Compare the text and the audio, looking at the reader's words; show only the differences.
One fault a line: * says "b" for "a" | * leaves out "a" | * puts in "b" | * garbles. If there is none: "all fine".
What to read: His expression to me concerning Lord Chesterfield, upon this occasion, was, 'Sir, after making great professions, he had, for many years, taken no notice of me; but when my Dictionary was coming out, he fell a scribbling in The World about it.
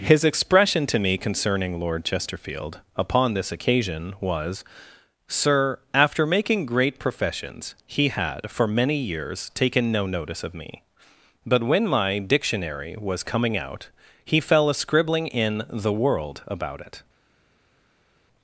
all fine